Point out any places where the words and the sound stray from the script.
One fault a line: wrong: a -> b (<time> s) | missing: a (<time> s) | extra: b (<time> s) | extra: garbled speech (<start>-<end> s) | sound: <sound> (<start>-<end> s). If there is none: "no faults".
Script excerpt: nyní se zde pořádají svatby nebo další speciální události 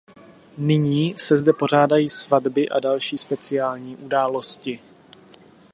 wrong: nebo -> a (2.7 s)